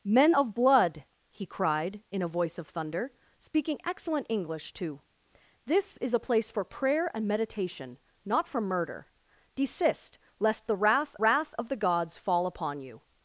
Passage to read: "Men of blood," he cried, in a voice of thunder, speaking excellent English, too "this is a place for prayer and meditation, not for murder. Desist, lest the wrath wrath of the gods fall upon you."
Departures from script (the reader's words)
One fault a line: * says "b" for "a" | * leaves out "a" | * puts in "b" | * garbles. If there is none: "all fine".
all fine